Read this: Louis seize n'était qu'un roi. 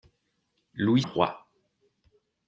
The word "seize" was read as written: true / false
false